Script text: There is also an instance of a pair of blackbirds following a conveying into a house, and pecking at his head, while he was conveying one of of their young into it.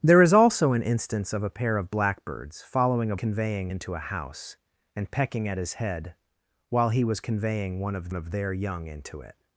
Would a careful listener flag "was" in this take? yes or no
no